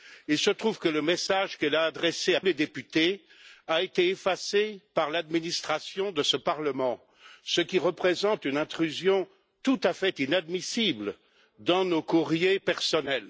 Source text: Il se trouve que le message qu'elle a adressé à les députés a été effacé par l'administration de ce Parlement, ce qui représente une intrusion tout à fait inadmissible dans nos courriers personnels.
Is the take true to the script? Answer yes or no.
yes